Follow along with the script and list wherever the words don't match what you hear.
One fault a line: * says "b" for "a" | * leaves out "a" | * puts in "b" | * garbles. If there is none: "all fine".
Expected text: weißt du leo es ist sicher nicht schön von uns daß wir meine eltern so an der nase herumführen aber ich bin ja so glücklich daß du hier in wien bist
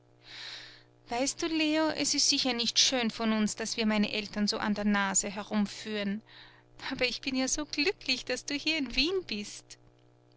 all fine